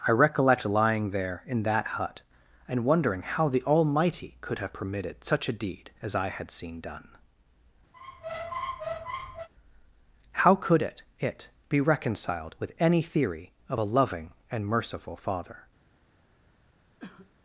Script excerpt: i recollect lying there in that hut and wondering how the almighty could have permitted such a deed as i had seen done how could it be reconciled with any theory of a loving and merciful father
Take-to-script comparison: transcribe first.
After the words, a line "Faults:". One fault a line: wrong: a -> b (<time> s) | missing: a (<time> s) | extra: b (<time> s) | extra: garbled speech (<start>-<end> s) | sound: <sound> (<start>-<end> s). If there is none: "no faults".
i recollect lying there in that hut and wondering how the almighty could have permitted such a deed as i had seen done how could it it be reconciled with any theory of a loving and merciful father
Faults:
sound: squeak (7.9-9.5 s)
extra: it (11.2 s)
sound: cough (17.0-17.3 s)